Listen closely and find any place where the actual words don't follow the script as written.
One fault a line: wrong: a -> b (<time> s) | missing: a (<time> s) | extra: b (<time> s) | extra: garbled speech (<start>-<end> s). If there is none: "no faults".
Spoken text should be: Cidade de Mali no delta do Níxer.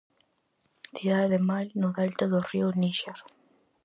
extra: río (2.5 s)